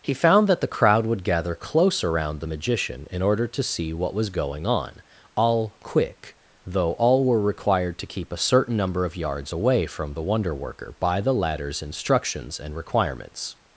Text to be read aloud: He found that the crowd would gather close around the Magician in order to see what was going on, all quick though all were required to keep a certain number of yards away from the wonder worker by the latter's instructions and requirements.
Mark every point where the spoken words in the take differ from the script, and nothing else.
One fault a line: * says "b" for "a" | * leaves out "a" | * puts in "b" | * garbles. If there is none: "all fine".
all fine